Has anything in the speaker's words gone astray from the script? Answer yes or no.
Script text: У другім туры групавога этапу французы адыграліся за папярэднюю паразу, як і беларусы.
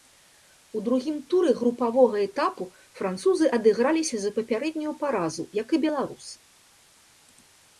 no